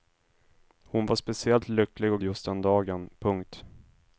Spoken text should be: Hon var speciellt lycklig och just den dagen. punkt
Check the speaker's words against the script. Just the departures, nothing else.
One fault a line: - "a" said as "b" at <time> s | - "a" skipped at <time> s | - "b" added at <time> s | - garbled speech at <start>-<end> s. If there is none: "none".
none